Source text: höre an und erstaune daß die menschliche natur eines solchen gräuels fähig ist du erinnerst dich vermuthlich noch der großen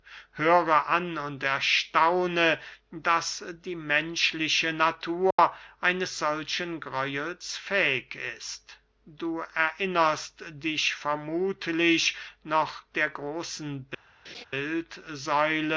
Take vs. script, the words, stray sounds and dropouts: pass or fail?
fail